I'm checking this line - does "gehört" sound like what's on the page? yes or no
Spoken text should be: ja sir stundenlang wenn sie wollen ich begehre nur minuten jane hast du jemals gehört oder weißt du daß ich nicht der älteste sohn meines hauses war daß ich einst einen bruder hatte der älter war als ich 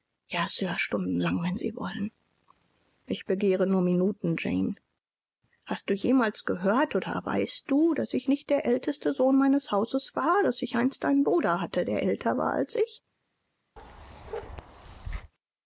yes